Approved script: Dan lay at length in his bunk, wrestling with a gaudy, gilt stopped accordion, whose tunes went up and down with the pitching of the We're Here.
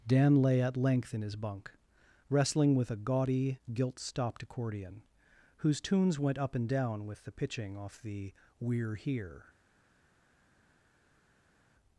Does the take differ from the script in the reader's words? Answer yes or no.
yes